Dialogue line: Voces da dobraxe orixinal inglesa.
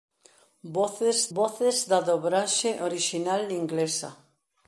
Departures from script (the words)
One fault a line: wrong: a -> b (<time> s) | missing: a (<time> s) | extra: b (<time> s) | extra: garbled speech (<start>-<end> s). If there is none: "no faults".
extra: voces (1.4 s)